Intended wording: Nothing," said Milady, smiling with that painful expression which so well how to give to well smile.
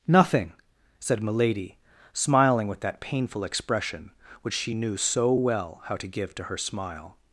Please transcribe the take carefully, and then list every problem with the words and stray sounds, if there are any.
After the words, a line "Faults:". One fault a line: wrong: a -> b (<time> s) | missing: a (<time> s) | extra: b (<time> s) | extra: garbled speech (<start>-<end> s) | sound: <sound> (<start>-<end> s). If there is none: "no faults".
Nothing," said Milady, smiling with that painful expression which she knew so well how to give to her smile.
Faults:
extra: she knew (4.5 s)
wrong: well -> her (6.4 s)